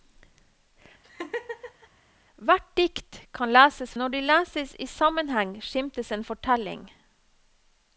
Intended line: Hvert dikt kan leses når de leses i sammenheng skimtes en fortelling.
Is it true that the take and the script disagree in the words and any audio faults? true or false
true